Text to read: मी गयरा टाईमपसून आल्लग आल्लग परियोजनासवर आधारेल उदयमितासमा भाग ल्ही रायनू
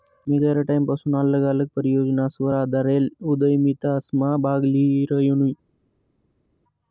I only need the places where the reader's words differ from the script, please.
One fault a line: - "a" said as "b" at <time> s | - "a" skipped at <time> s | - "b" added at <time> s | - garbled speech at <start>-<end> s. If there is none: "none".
none